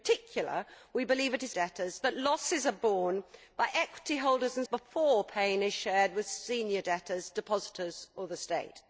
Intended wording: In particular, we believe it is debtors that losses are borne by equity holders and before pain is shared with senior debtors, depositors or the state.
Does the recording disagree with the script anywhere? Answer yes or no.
no